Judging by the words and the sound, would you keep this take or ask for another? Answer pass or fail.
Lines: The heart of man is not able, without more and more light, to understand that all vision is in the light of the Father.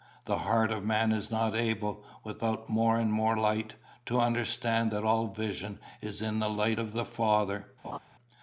fail